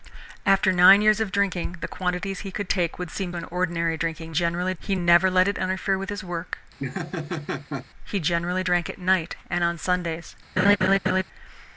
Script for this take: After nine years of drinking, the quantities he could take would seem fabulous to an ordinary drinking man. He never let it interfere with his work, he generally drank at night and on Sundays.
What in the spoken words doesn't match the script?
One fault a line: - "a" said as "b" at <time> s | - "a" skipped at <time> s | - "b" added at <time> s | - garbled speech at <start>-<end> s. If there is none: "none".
- "fabulous to" skipped at 3.3 s
- "man" said as "generally" at 4.3 s